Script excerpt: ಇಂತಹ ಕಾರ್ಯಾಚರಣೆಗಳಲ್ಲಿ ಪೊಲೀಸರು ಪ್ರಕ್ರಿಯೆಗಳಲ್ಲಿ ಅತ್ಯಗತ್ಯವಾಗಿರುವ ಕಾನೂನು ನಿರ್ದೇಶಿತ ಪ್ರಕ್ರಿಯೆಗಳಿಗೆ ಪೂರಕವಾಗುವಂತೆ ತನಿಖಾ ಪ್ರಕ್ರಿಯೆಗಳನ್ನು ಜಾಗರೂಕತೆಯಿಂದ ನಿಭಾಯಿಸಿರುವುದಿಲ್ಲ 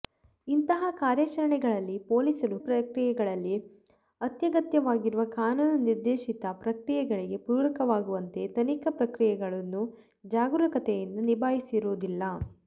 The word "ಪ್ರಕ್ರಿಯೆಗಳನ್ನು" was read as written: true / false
true